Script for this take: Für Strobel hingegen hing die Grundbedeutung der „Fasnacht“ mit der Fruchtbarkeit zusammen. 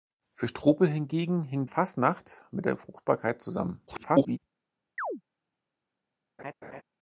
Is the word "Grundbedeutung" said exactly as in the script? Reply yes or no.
no